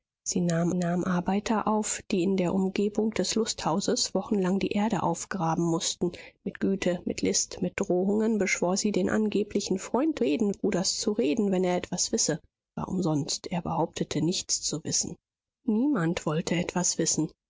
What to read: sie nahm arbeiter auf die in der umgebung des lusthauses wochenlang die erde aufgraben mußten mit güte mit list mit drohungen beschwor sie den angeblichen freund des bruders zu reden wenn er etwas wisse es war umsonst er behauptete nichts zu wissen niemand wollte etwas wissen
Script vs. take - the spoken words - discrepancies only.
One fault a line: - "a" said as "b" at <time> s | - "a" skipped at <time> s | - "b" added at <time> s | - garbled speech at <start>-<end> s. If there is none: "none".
- "nahm" added at 0.7 s
- "des" said as "reden" at 10.1 s
- "es" skipped at 12.4 s